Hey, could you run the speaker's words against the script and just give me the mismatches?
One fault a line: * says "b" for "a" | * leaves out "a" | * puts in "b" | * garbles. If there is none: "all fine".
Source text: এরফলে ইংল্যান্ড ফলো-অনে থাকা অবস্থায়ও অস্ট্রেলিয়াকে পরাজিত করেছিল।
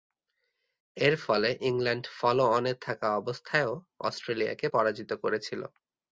all fine